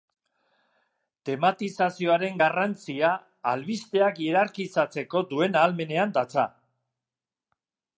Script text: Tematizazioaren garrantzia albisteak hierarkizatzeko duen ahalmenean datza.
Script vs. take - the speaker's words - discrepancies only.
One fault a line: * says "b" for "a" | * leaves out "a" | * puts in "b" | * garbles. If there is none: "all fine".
all fine